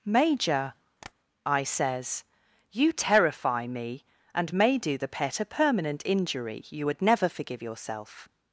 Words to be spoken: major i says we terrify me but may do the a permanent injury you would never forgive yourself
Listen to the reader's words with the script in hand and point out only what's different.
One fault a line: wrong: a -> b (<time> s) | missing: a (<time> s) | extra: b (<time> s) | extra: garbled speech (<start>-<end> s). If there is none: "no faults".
wrong: we -> you (2.7 s)
wrong: but -> and (4.3 s)
extra: pet (5.1 s)